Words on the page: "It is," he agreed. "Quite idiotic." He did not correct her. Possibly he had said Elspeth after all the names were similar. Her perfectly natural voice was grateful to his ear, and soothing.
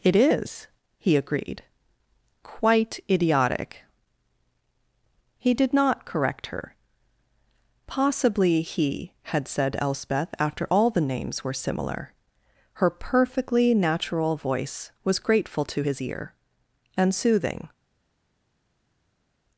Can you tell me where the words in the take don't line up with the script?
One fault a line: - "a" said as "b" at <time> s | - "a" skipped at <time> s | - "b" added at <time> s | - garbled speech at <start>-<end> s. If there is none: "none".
none